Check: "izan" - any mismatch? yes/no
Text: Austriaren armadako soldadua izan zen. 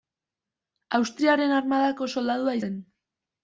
yes